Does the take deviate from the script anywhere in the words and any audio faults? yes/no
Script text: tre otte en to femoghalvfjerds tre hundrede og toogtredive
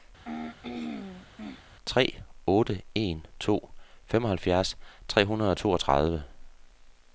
yes